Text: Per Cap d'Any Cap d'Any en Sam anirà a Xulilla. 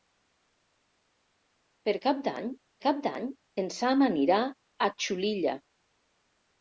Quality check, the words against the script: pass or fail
pass